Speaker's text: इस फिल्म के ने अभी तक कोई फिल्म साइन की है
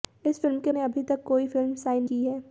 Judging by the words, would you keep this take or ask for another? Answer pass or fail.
pass